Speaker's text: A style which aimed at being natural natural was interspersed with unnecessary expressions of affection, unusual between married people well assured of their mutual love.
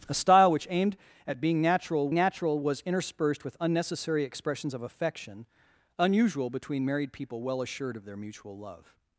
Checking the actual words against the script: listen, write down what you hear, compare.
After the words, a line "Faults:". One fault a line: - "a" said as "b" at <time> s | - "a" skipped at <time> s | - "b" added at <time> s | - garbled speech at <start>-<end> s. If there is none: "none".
A style which aimed at being natural natural was interspersed with unnecessary expressions of affection, unusual between married people well assured of their mutual love.
Faults:
none